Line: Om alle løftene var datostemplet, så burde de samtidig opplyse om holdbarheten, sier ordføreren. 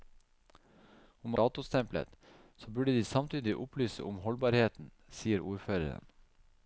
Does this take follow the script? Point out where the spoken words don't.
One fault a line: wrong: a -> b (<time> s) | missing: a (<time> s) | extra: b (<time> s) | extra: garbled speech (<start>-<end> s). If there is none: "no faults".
missing: alle løftene var (1.4 s)